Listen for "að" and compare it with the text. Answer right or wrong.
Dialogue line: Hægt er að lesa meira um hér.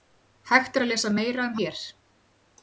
right